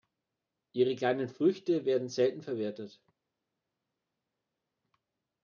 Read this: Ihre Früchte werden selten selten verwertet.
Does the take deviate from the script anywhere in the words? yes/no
yes